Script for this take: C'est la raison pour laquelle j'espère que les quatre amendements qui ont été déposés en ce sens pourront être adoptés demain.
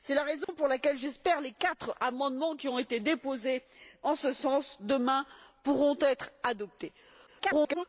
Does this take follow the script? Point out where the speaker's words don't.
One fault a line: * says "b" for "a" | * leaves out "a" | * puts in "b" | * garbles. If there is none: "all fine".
* garbles